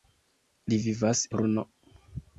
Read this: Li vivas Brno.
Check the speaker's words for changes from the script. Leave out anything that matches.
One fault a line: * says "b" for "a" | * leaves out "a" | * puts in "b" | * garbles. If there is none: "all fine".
all fine